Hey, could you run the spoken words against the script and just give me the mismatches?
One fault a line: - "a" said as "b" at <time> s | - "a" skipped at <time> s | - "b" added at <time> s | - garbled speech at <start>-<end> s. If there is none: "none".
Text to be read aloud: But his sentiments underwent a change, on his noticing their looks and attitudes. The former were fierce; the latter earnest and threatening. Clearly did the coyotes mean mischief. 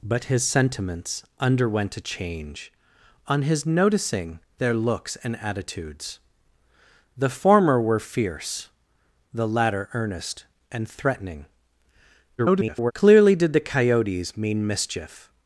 - garbled speech at 12.4-12.9 s